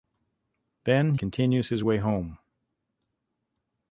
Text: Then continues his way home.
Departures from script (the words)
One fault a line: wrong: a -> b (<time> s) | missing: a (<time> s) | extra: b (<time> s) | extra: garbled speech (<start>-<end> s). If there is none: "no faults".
no faults